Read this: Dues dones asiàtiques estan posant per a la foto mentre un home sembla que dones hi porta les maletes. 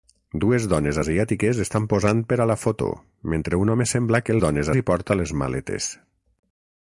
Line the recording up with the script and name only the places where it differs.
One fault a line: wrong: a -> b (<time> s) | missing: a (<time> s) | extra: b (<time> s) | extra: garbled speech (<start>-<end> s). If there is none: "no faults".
no faults